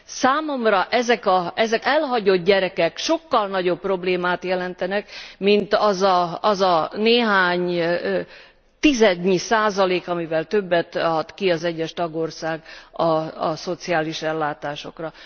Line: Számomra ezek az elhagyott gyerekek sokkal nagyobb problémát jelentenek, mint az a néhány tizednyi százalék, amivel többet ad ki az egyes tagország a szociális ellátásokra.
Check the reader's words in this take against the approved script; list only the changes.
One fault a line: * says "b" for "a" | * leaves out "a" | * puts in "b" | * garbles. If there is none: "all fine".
* leaves out "az"